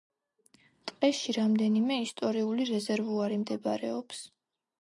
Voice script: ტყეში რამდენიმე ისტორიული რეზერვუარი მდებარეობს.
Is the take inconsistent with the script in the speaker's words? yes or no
no